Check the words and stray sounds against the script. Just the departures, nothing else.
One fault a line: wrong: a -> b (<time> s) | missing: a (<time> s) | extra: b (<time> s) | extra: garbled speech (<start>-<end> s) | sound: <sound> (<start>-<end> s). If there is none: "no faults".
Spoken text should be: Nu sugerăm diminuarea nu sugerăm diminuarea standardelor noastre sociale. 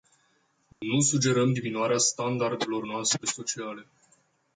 sound: dropout (0.7-0.8 s)
missing: nu sugerăm diminuarea (2.0 s)